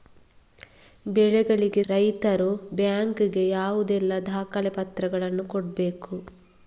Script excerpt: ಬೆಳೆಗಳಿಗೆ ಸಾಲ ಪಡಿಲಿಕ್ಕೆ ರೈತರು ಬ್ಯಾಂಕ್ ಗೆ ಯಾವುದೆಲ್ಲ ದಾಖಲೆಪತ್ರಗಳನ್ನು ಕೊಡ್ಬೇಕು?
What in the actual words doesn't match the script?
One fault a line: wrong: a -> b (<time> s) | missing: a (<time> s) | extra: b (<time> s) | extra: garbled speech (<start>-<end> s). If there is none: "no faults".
missing: ಸಾಲ ಪಡಿಲಿಕ್ಕೆ (1.8 s)